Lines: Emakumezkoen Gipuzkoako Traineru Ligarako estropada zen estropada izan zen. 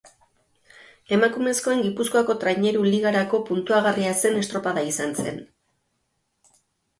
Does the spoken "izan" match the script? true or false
true